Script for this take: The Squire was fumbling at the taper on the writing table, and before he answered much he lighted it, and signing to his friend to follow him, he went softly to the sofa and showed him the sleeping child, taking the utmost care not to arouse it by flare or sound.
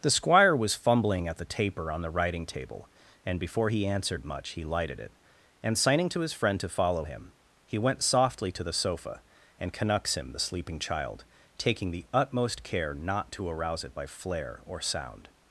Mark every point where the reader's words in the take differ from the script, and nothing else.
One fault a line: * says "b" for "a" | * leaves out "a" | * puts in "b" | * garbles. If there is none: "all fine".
* says "canucks" for "showed"